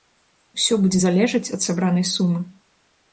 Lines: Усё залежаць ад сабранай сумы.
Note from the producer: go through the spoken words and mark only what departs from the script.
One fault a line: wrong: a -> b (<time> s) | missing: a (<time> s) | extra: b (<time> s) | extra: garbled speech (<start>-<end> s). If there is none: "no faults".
extra: будзе (0.8 s)